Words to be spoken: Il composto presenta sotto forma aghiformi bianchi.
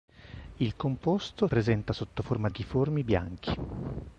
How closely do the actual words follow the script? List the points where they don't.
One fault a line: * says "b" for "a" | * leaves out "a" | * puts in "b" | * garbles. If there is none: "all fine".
all fine